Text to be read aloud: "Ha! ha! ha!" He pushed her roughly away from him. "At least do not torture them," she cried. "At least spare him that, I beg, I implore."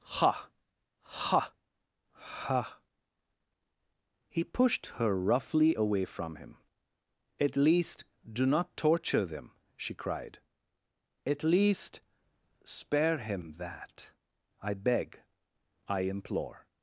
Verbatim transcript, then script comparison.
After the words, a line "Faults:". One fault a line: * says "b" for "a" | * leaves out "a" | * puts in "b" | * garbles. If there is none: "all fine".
"Ha! ha! ha!" He pushed her roughly away from him. "At least do not torture them," she cried. "At least spare him that, I beg, I implore."
Faults:
all fine